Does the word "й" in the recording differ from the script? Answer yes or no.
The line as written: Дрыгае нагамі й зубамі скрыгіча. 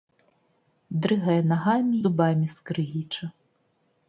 yes